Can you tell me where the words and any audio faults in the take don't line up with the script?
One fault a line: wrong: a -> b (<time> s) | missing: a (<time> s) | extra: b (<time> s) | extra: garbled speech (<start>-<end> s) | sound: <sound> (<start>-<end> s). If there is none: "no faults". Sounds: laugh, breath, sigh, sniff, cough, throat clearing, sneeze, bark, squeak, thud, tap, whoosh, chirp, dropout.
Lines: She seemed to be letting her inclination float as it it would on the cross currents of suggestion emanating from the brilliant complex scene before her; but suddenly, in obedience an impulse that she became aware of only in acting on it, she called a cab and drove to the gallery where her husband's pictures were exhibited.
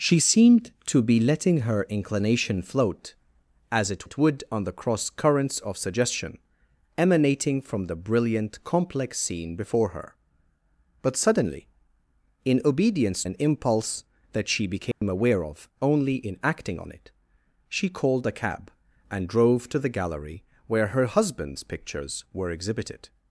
sound: dropout (14.9-15.0 s)